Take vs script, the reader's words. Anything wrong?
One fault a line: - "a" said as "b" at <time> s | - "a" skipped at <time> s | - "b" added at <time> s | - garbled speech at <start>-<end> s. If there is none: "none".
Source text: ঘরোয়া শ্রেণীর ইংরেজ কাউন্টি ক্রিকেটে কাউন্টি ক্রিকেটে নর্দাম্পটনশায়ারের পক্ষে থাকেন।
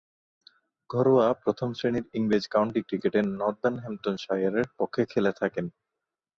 - "প্রথম" added at 1.4 s
- "কাউন্টি ক্রিকেটে" skipped at 3.2 s
- "খেলে" added at 5.1 s